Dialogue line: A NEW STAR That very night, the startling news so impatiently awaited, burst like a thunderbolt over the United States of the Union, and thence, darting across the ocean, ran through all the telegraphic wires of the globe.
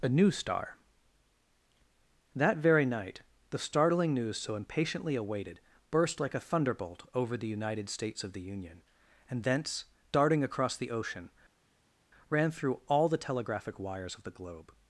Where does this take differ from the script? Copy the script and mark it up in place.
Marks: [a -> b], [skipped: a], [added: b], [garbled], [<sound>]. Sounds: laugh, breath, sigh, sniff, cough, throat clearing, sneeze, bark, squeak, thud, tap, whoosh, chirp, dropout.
A NEW STAR That very night, the startling news so impatiently awaited, burst like a thunderbolt over the United States of the Union, and thence, darting across the ocean, ran through all the telegraphic wires of the globe.